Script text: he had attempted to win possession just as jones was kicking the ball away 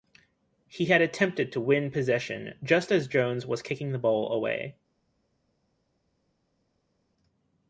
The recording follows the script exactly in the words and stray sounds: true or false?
true